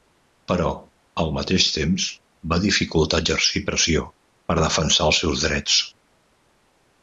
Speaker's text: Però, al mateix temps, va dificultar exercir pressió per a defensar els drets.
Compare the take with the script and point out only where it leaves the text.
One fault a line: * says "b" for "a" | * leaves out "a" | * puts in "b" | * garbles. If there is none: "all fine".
* puts in "seus"